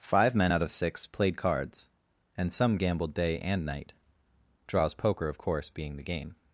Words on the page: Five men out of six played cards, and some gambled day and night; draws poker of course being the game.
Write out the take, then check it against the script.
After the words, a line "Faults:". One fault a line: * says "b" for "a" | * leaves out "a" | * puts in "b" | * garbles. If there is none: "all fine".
Five men out of six played cards, and some gambled day and night; draws poker of course being the game.
Faults:
all fine